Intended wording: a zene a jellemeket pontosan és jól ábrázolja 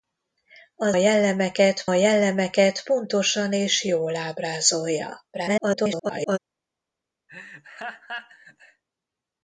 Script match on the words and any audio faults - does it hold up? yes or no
no